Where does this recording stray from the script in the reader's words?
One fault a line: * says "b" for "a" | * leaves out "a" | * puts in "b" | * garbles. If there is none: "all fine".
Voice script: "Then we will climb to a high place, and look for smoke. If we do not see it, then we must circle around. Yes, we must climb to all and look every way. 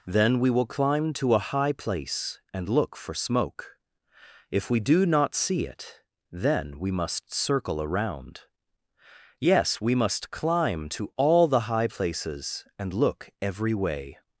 * puts in "the high places"